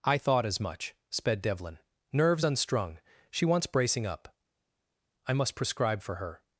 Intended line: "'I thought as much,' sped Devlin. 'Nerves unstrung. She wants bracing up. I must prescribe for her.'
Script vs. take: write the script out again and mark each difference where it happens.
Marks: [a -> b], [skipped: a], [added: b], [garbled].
"'I thought as much,' sped Devlin. 'Nerves unstrung. She wants bracing up. I must prescribe for her.'